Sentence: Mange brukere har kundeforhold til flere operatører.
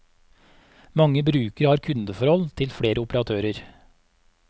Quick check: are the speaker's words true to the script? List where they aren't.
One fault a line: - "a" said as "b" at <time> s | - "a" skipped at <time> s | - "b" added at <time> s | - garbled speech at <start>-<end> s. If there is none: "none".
none